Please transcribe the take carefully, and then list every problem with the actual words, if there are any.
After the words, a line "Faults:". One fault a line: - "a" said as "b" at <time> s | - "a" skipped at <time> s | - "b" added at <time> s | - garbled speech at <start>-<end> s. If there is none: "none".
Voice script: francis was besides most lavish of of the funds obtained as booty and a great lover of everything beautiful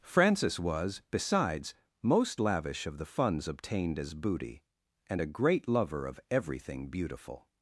francis was besides most lavish of the funds obtained as booty and a great lover of everything beautiful
Faults:
- "of" skipped at 3.0 s